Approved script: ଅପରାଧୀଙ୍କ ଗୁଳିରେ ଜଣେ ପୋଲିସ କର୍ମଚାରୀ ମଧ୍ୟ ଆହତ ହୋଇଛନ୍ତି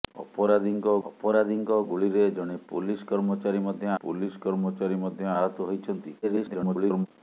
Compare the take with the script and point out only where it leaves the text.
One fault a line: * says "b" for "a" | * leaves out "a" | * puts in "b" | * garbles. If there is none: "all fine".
* puts in "ଅପରାଧୀଙ୍କ"
* puts in "ପୋଲିସ କର୍ମଚାରୀ ମଧ୍ୟ"
* garbles